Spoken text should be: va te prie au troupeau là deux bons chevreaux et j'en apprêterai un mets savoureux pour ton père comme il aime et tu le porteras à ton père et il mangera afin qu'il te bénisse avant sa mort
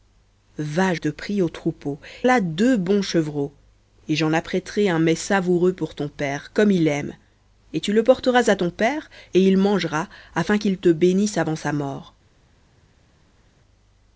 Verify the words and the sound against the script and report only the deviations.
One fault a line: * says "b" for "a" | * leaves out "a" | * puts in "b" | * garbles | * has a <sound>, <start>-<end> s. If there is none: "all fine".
all fine